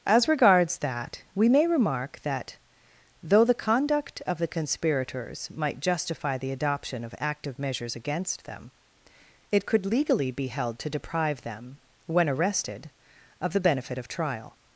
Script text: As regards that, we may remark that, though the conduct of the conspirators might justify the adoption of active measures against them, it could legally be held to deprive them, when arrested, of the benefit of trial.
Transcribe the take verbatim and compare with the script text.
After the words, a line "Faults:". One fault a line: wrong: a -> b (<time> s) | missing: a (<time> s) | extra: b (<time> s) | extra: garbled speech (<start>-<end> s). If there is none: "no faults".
As regards that, we may remark that, though the conduct of the conspirators might justify the adoption of active measures against them, it could legally be held to deprive them, when arrested, of the benefit of trial.
Faults:
no faults